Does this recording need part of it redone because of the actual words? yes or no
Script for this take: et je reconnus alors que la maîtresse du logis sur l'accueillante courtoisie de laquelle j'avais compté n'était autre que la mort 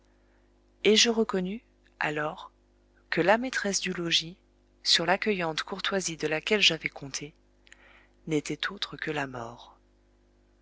no